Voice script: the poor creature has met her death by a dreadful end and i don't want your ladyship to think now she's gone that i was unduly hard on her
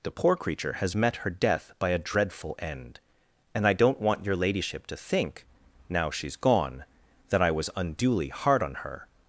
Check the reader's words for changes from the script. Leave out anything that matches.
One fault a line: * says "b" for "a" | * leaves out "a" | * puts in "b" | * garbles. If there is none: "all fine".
all fine